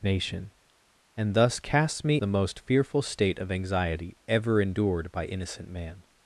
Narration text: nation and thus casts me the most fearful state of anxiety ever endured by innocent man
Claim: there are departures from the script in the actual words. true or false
false